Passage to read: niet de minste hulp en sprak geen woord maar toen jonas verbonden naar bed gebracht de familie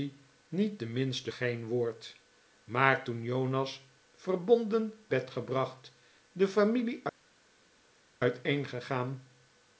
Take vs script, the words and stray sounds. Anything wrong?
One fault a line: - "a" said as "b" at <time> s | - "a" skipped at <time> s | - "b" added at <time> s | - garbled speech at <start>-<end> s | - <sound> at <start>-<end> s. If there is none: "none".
- "hulp en sprak" skipped at 1.3 s
- "naar" skipped at 4.9 s